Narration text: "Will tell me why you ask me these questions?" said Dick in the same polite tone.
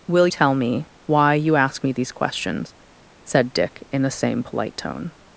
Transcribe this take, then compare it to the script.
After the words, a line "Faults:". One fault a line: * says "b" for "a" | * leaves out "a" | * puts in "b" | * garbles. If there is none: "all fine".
"Will tell me why you ask me these questions?" said Dick in the same polite tone.
Faults:
all fine